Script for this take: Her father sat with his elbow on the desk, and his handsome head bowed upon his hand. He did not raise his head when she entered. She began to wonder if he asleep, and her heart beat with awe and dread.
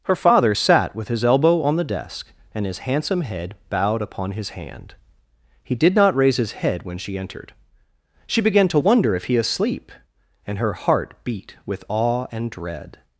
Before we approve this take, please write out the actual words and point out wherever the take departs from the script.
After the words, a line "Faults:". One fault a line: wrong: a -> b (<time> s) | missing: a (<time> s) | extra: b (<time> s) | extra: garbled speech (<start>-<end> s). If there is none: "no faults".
Her father sat with his elbow on the desk, and his handsome head bowed upon his hand. He did not raise his head when she entered. She began to wonder if he asleep, and her heart beat with awe and dread.
Faults:
no faults